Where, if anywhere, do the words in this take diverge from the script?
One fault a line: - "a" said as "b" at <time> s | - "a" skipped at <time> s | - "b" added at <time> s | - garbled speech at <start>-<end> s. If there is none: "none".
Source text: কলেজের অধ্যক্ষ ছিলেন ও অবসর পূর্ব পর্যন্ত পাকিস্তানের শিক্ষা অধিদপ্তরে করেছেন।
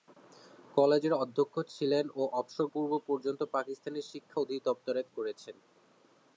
none